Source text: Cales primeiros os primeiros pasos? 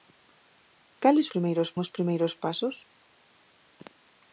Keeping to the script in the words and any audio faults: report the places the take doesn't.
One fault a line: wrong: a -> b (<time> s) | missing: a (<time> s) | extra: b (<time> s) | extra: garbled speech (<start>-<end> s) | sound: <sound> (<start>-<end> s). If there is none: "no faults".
no faults